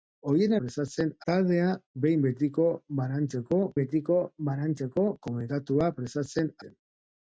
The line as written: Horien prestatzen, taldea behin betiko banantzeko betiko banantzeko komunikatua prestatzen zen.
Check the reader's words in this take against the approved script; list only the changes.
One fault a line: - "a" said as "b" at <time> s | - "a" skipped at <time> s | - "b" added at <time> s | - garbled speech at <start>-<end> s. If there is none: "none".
none